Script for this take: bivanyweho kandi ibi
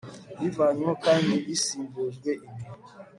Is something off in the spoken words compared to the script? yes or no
yes